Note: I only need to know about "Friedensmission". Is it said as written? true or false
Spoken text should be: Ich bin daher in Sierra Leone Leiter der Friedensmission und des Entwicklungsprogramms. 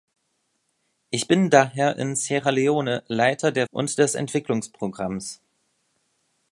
false